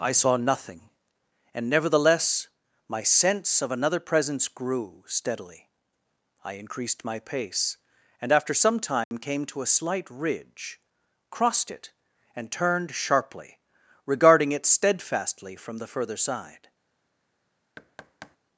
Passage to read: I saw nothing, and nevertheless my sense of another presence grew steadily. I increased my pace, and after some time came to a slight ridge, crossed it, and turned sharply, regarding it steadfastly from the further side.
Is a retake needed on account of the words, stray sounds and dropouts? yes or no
yes